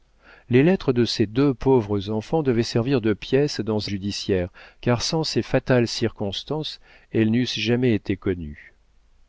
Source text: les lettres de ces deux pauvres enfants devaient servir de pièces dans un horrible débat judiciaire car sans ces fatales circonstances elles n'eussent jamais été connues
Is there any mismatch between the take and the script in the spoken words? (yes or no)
yes